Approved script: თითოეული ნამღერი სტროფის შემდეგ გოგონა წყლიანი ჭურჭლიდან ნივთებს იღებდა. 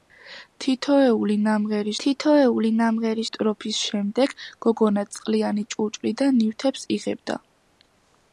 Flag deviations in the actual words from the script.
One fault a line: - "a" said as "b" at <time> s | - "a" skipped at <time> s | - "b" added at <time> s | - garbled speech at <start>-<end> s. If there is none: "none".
- "თითოეული ნამღერი" added at 2.0 s